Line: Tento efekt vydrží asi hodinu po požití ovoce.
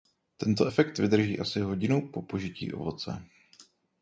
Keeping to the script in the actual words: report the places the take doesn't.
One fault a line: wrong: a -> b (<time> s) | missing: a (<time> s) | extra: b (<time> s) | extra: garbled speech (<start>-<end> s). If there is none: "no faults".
no faults